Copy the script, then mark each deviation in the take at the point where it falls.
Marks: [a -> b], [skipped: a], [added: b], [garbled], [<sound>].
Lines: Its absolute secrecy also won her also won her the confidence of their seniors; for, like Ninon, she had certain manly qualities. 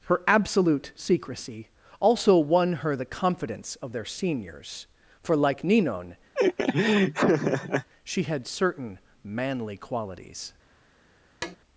[Its -> Her] absolute secrecy also won her [skipped: also won her] the confidence of their seniors; for, like Ninon, [laugh] she had certain manly qualities. [tap]